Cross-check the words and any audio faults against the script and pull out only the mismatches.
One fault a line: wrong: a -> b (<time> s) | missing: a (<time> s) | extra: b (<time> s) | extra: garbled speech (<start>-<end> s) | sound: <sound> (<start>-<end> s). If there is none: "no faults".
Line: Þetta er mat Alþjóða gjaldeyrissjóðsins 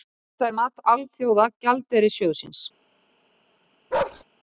sound: bark (3.9-4.2 s)